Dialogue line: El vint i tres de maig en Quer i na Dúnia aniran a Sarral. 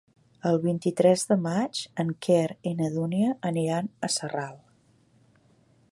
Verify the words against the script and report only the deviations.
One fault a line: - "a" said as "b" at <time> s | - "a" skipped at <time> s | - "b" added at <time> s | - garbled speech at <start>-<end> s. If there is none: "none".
none